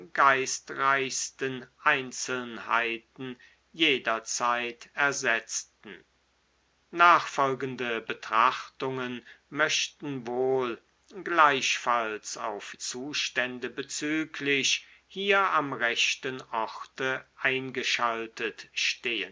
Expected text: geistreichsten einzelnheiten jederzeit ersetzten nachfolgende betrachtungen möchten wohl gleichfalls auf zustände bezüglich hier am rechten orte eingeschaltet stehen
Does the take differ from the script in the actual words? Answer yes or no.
no